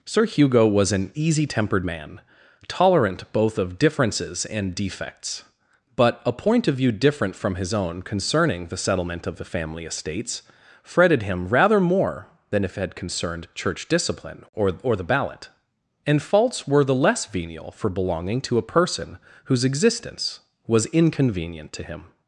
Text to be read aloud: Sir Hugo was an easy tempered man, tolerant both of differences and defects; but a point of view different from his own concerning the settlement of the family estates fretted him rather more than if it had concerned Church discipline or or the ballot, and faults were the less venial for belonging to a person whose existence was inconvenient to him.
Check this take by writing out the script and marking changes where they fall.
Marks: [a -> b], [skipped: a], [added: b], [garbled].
Sir Hugo was an easy tempered man, tolerant both of differences and defects; but a point of view different from his own concerning the settlement of the family estates fretted him rather more than if it had concerned Church discipline or or the ballot, and faults were the less venial for belonging to a person whose existence was inconvenient to him.